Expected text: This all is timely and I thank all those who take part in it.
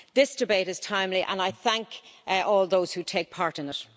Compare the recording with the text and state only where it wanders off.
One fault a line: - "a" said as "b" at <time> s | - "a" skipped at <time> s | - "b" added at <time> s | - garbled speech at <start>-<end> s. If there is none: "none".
- "all" said as "debate" at 0.3 s